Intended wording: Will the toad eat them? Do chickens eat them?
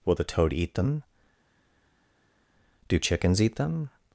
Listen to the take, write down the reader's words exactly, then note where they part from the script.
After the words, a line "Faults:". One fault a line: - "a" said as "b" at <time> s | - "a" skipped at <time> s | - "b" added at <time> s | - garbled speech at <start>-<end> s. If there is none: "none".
Will the toad eat them? Do chickens eat them?
Faults:
none